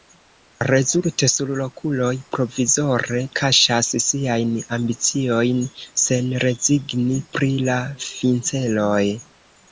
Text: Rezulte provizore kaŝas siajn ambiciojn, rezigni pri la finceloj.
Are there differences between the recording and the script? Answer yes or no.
yes